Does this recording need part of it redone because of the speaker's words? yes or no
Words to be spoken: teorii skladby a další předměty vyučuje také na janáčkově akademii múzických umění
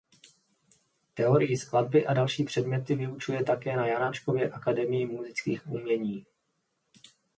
no